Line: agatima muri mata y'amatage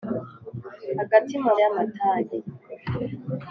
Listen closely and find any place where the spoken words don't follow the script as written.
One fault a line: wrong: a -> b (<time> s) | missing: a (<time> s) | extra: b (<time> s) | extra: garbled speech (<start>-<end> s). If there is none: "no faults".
missing: muri mata (1.5 s)